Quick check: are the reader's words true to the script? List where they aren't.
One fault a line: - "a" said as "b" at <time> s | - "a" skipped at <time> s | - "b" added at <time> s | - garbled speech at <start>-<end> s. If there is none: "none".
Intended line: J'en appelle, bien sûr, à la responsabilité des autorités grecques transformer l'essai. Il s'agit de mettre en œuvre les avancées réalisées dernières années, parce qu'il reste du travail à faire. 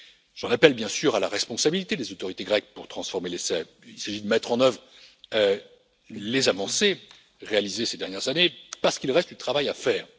- "pour" added at 2.7 s
- "ces" added at 7.9 s